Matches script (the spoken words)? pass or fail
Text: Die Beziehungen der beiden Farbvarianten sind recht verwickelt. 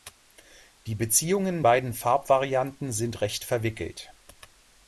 fail